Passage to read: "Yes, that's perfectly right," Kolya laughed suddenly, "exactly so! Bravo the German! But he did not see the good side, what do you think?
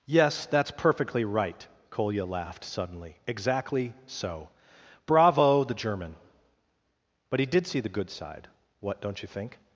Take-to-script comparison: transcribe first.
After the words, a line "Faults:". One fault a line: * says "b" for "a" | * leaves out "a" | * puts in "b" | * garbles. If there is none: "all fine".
"Yes, that's perfectly right," Kolya laughed suddenly, "exactly so! Bravo the German! But he did see the good side, what don't you think?
Faults:
* leaves out "not"
* says "don't" for "do"